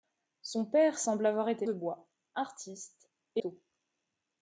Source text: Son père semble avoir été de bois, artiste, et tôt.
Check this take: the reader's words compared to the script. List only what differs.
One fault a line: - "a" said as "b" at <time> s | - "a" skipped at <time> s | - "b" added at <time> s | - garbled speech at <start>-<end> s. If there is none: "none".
none